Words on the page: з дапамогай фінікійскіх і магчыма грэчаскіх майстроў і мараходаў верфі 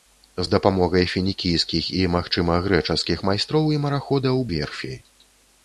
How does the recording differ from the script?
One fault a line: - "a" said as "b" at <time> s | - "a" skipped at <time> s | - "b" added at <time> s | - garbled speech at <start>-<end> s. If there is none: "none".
none